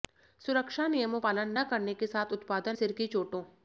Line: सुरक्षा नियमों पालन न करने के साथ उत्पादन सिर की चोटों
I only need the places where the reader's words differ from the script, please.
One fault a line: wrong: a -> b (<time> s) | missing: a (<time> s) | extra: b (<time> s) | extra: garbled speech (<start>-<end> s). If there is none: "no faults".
no faults